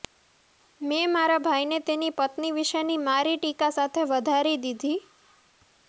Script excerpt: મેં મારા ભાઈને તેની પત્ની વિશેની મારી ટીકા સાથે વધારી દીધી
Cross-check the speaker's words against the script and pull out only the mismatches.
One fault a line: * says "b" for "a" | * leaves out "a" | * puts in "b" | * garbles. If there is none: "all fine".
all fine